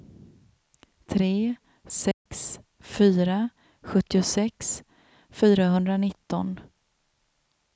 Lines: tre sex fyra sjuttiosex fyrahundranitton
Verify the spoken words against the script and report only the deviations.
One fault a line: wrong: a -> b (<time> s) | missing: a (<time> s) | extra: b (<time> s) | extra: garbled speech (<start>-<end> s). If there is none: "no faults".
no faults